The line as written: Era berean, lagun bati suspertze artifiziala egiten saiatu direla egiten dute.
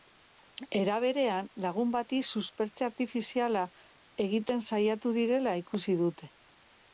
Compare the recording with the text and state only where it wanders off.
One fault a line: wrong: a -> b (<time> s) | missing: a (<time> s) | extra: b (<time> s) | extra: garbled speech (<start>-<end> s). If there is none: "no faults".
wrong: egiten -> ikusi (5.6 s)